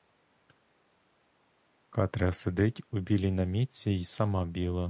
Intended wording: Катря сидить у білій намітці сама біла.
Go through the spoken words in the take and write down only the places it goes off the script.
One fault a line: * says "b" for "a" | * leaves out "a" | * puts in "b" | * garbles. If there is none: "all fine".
* puts in "й"